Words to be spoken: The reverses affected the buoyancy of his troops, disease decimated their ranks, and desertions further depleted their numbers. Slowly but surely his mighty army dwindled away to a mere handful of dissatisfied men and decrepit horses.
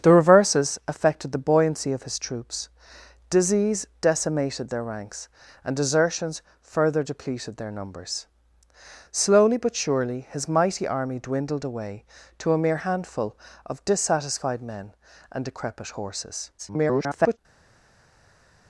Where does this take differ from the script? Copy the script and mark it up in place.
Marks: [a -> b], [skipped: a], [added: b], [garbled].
The reverses affected the buoyancy of his troops, disease decimated their ranks, and desertions further depleted their numbers. Slowly but surely his mighty army dwindled away to a mere handful of dissatisfied men and decrepit horses. [garbled]